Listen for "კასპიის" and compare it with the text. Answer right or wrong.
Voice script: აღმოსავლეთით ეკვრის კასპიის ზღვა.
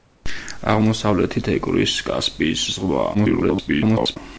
right